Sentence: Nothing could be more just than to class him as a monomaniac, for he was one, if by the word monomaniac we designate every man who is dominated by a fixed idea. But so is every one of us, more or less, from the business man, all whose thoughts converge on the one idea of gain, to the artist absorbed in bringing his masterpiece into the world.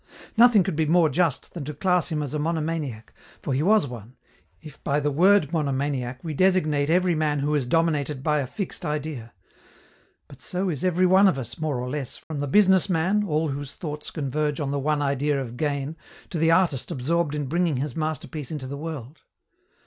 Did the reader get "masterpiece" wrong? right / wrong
right